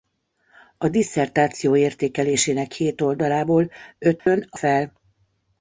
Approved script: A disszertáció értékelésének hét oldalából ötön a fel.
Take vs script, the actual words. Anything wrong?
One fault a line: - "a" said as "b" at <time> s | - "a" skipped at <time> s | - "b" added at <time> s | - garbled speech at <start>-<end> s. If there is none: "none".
none